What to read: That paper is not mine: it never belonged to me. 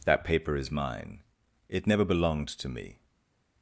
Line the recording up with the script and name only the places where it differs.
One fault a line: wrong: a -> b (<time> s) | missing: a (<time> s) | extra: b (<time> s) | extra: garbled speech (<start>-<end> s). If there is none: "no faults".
missing: not (0.7 s)